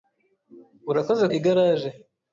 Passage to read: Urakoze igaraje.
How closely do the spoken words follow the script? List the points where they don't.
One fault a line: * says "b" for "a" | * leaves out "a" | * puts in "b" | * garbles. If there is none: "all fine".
all fine